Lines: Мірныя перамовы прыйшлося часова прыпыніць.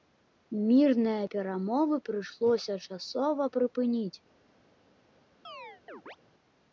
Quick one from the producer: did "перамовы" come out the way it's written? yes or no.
yes